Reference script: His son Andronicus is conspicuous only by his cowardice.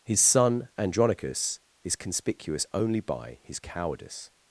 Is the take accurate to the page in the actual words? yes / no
yes